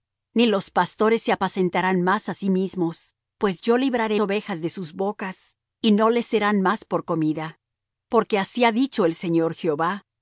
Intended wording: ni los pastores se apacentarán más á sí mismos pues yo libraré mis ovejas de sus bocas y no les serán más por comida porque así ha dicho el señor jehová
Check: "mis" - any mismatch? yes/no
yes